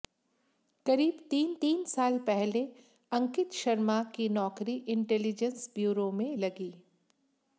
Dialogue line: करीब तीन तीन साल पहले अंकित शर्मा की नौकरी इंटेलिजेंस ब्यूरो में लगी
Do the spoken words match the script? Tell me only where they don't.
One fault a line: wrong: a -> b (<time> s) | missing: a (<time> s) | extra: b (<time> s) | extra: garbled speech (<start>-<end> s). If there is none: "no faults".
no faults